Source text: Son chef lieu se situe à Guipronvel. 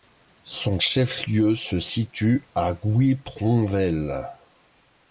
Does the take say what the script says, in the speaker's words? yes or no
yes